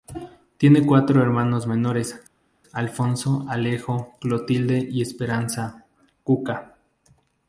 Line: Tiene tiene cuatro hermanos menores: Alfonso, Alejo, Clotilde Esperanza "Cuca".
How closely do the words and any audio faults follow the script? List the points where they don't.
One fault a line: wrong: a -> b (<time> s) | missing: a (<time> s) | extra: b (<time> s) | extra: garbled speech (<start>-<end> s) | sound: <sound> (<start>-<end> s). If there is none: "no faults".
missing: tiene (0.8 s)
extra: y (4.9 s)